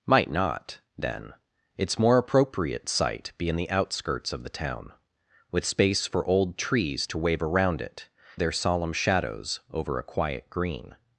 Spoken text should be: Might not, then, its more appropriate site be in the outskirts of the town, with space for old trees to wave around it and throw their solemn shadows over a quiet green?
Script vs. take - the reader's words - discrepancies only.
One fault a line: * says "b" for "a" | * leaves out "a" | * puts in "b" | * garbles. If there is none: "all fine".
* leaves out "and throw"